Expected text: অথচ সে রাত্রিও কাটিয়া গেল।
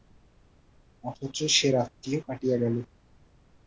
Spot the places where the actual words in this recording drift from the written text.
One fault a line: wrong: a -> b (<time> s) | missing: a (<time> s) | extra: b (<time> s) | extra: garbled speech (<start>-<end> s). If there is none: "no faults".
no faults